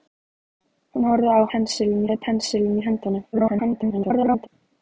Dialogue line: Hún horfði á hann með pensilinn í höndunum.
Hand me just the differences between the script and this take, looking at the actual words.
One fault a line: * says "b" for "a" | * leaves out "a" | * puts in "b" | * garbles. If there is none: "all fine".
* says "pensilinn" for "hann"
* garbles